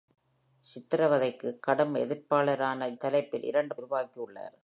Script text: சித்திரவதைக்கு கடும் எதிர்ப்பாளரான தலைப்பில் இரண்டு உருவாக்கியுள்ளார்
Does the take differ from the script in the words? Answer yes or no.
no